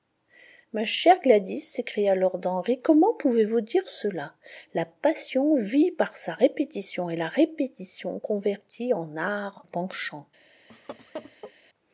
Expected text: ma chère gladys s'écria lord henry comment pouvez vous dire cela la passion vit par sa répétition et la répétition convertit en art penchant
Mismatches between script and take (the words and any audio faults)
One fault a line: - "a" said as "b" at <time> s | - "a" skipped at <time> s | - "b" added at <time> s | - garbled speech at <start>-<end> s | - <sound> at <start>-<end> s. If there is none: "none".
- laugh at 10.7-11.5 s